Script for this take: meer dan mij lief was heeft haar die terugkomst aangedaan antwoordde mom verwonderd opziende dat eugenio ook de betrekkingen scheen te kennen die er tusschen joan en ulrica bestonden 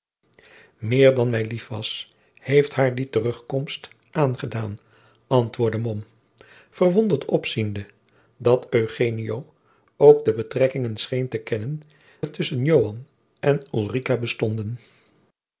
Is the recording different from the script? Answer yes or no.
yes